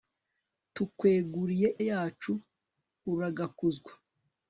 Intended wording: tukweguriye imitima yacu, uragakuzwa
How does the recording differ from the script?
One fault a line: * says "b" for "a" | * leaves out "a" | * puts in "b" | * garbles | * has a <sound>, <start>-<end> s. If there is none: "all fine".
* leaves out "imitima"